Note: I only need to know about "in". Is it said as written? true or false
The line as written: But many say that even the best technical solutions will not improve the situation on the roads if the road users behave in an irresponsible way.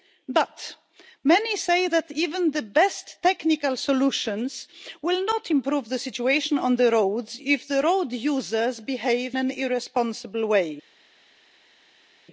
false